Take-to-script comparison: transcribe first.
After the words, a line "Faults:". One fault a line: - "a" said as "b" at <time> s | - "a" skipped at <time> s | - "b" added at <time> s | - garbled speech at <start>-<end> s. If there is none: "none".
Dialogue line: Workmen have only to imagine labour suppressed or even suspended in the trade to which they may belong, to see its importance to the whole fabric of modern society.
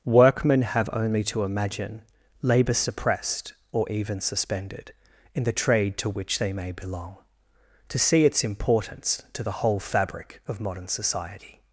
Workmen have only to imagine labour suppressed or even suspended in the trade to which they may belong, to see its importance to the whole fabric of modern society.
Faults:
none